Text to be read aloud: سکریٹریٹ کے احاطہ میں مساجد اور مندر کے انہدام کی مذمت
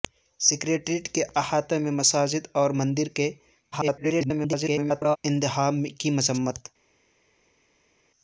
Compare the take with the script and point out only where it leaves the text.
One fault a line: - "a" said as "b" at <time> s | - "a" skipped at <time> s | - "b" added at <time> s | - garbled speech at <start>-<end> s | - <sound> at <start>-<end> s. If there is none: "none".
- garbled speech at 3.7-5.2 s